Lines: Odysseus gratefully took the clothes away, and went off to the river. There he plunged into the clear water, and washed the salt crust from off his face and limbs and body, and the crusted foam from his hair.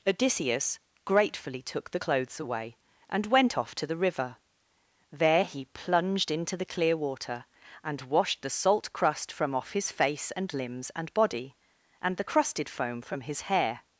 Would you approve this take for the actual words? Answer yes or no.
yes